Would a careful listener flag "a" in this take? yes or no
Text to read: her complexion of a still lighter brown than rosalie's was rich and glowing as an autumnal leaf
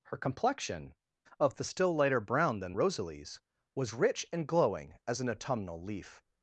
yes